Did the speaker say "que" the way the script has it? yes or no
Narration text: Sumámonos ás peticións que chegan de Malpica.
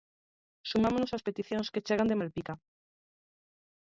yes